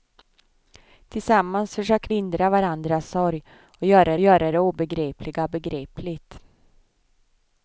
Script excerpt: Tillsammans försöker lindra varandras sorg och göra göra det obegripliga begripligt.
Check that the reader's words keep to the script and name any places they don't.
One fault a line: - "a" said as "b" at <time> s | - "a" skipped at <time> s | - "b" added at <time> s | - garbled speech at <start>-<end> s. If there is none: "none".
none